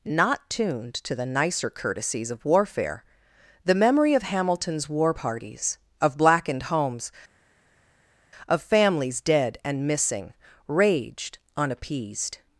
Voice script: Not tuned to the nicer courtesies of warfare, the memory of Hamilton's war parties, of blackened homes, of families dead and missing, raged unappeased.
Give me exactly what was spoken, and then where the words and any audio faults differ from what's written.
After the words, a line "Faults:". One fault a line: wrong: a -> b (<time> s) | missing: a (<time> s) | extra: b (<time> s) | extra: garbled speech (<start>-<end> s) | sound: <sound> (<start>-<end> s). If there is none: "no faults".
Not tuned to the nicer courtesies of warfare, the memory of Hamilton's war parties, of blackened homes, of families dead and missing, raged unappeased.
Faults:
no faults